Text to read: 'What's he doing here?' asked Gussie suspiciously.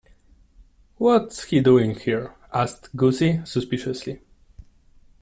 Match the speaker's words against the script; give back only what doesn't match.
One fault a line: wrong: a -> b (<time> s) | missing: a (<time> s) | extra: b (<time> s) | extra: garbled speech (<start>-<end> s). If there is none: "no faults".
no faults